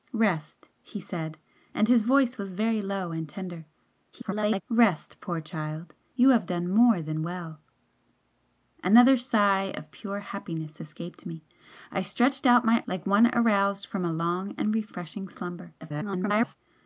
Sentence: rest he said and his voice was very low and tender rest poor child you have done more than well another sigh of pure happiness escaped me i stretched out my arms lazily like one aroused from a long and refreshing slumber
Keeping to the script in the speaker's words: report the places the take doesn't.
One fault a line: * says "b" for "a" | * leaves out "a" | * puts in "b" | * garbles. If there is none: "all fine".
* garbles
* leaves out "arms lazily"
* garbles